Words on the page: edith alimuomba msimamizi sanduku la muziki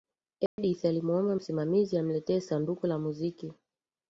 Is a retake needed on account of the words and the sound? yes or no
yes